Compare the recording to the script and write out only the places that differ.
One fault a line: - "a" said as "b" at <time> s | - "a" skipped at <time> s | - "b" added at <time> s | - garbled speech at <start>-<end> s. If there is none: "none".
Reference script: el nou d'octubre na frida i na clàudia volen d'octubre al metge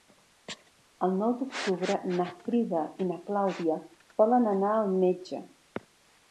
- "d'octubre" said as "anar" at 4.6 s